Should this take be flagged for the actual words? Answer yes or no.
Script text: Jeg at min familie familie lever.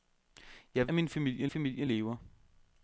no